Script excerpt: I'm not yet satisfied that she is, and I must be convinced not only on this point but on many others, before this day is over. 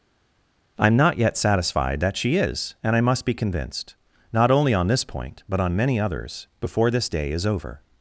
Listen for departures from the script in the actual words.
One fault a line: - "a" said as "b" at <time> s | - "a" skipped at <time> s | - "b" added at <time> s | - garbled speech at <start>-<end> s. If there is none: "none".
none